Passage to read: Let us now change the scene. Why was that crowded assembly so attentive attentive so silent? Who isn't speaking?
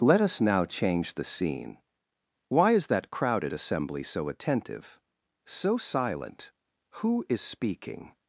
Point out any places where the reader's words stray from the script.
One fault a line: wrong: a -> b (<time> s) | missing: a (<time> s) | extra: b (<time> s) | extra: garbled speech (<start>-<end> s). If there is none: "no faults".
wrong: was -> is (2.7 s)
missing: attentive (5.0 s)
wrong: isn't -> is (7.3 s)